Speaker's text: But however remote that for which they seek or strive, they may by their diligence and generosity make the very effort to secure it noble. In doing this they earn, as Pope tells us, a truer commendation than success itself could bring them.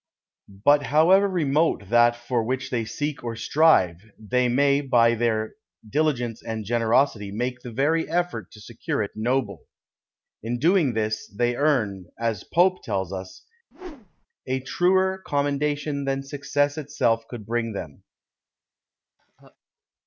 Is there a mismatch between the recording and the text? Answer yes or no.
no